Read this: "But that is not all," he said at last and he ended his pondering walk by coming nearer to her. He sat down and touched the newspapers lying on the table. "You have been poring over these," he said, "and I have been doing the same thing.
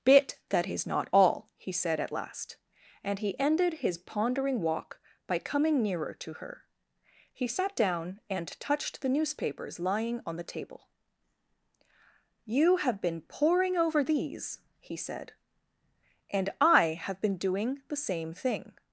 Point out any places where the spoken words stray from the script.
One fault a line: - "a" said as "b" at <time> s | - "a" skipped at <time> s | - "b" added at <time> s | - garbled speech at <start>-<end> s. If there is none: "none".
- "But" said as "Bit" at 0.0 s